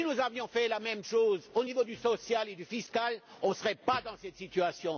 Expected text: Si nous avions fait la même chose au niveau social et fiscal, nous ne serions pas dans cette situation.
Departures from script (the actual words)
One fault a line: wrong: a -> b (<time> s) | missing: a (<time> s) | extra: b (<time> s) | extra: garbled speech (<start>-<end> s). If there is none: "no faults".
no faults